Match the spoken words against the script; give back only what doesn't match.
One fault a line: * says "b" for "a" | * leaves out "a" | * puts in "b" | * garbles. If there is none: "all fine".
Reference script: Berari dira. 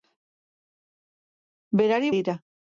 all fine